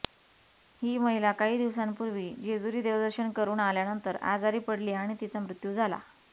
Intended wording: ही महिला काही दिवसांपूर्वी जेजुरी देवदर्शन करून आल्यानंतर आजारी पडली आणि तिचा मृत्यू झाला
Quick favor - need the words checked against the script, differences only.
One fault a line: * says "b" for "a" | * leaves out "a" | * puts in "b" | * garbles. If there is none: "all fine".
all fine